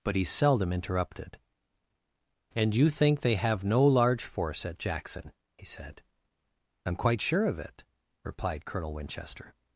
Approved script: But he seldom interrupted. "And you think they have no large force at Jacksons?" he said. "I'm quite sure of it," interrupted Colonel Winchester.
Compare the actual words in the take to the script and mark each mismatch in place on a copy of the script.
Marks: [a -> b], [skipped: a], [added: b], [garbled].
But he seldom interrupted. "And you think they have no large force at [Jacksons?" -> Jackson] he said. "I'm quite sure of it," [interrupted -> replied] Colonel Winchester.